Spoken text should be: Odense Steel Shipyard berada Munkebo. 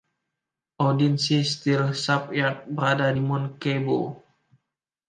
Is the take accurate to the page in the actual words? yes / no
yes